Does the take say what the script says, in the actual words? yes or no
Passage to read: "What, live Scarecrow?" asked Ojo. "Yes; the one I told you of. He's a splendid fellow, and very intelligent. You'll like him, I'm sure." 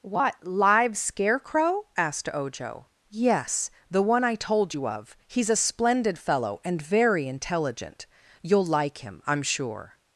yes